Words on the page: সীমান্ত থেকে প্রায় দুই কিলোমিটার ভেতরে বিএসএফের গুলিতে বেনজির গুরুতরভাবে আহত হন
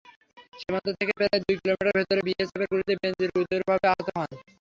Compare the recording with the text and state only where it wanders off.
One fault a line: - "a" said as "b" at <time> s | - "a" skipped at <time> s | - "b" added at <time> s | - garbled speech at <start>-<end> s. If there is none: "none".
none